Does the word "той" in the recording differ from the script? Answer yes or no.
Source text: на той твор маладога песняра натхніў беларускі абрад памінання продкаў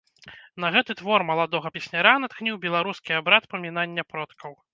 yes